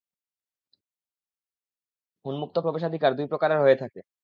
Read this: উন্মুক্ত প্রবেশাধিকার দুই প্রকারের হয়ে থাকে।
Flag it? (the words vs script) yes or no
no